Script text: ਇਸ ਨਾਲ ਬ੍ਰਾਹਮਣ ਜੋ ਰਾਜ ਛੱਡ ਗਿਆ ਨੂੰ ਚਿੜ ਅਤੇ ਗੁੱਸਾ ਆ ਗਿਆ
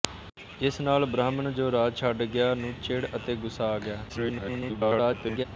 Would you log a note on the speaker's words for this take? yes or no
yes